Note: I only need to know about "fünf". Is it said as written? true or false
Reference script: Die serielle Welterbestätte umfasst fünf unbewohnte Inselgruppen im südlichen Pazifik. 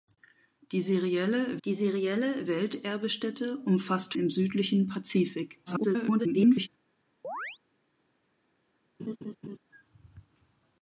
false